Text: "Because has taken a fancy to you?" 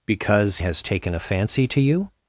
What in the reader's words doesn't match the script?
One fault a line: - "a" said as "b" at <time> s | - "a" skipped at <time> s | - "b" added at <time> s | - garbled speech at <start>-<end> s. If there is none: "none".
none